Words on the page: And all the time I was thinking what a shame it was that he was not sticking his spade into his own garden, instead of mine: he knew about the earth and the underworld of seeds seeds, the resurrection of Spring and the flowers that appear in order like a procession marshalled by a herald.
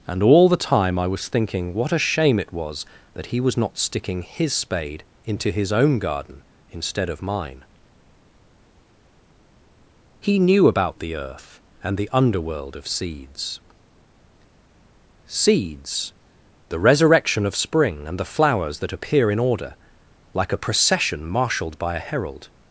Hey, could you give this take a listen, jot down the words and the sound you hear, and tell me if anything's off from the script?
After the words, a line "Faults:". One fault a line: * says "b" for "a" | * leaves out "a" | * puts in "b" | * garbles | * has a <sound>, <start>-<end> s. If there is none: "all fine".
And all the time I was thinking what a shame it was that he was not sticking his spade into his own garden, instead of mine: he knew about the earth and the underworld of seeds seeds, the resurrection of Spring and the flowers that appear in order like a procession marshalled by a herald.
Faults:
all fine